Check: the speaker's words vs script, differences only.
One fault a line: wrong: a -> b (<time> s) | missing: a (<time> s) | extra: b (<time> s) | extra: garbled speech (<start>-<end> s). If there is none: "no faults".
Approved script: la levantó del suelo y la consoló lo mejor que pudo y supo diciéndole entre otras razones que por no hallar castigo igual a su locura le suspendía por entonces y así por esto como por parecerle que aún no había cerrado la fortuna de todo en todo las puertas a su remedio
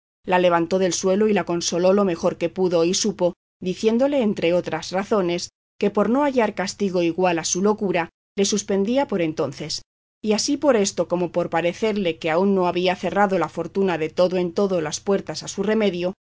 no faults